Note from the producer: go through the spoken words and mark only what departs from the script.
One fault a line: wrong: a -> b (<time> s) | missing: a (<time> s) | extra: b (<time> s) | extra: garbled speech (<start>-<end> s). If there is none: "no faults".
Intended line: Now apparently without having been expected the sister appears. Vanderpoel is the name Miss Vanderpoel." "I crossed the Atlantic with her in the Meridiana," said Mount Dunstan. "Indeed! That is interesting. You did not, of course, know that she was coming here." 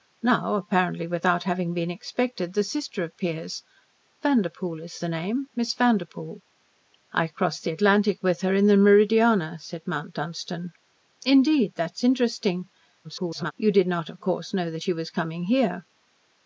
extra: garbled speech (13.0-13.5 s)